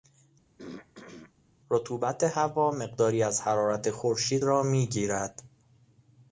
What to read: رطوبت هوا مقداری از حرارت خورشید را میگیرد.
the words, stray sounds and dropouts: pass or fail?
fail